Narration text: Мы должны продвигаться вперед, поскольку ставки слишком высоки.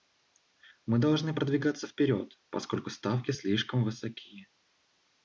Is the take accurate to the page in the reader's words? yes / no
yes